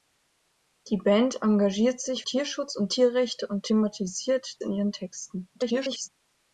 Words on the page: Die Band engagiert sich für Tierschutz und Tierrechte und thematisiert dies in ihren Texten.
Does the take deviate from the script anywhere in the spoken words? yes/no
yes